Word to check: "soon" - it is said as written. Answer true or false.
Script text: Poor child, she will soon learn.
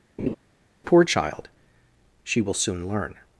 true